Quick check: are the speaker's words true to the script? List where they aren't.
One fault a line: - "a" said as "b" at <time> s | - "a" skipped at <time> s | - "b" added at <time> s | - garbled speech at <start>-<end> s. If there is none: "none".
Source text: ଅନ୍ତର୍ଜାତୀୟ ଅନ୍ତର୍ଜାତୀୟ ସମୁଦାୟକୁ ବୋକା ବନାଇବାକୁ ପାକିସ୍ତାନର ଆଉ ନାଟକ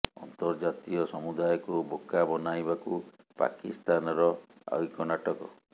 - "ଅନ୍ତର୍ଜାତୀୟ" skipped at 1.0 s
- "ଏକ" added at 4.9 s